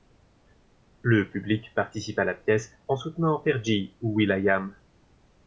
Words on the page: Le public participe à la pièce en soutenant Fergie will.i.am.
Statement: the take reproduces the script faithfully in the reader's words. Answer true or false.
false